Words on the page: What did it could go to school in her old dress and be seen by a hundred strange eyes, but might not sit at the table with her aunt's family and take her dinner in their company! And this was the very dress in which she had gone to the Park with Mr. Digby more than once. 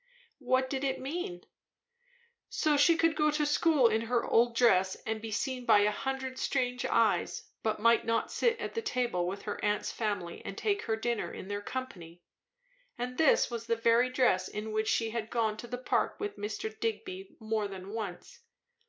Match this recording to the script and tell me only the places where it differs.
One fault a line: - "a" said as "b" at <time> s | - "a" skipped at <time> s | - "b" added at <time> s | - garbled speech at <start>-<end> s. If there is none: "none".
- "mean So she" added at 1.0 s